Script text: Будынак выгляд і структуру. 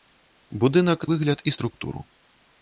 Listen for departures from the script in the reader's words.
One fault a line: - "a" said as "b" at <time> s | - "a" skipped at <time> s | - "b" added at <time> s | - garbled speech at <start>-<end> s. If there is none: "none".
none